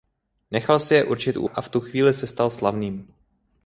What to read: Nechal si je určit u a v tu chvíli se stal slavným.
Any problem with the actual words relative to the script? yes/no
no